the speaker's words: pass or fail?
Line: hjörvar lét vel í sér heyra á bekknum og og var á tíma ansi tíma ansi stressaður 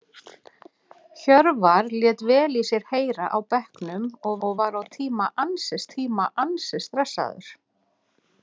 pass